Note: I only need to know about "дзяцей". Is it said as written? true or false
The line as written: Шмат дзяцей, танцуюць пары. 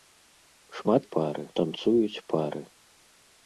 false